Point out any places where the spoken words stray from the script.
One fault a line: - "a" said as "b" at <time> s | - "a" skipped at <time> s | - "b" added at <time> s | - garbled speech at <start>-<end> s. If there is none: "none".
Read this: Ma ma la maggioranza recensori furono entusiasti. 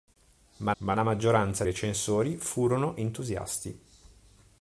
none